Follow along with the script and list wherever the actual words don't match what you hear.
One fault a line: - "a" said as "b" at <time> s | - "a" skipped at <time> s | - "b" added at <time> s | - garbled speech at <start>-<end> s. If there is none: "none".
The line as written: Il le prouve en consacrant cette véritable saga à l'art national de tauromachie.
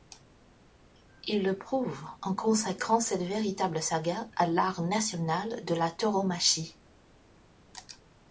- "la" added at 5.8 s